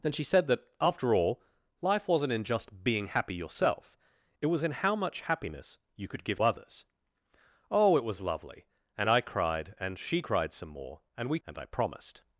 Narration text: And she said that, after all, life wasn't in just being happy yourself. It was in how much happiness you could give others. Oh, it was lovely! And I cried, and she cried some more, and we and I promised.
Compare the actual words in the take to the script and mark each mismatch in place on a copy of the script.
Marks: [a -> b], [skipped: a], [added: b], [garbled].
And she said that, after all, life wasn't in just being happy yourself. It was in how much happiness you could give others. Oh, it was lovely! And I cried, and she cried some more, and we and I promised.